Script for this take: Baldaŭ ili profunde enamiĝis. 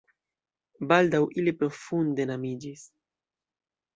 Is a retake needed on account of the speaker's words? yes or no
no